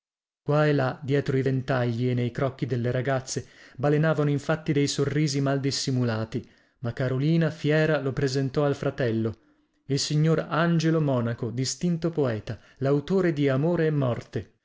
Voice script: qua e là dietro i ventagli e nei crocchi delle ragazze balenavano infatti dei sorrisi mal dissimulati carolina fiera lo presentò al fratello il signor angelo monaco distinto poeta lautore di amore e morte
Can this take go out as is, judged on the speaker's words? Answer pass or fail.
fail